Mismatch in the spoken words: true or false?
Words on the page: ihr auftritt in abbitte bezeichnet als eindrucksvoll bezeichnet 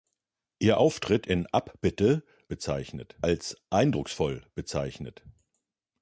false